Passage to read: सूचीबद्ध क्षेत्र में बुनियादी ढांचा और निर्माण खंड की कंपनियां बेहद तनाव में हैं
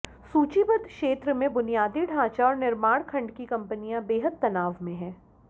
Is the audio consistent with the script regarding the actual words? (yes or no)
yes